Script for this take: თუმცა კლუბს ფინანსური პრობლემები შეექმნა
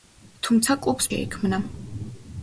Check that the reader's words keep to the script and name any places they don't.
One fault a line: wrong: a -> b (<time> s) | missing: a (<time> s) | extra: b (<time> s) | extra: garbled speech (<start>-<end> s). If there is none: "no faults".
missing: ფინანსური პრობლემები (1.1 s)